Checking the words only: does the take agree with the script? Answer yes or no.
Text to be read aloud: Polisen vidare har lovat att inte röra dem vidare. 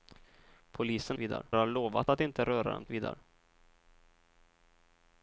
yes